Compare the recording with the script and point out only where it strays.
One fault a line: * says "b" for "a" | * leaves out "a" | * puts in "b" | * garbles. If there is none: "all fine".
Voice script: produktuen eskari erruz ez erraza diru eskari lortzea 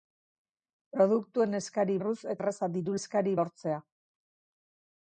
all fine